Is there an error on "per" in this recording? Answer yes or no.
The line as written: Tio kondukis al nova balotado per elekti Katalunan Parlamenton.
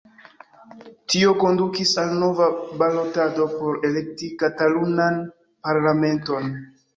yes